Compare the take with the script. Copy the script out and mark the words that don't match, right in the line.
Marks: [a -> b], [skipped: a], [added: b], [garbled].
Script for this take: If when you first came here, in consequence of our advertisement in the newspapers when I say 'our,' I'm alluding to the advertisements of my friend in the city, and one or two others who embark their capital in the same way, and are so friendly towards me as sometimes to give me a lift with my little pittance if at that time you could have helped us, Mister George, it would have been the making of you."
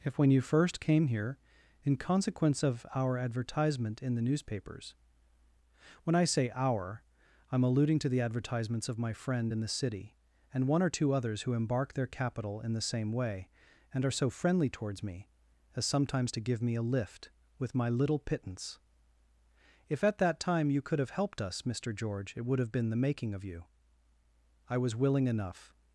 If when you first came here, in consequence of our advertisement in the newspapers when I say 'our,' I'm alluding to the advertisements of my friend in the city, and one or two others who embark their capital in the same way, and are so friendly towards me as sometimes to give me a lift with my little pittance if at that time you could have helped us, Mister George, it would have been the making of you." [added: I was willing enough]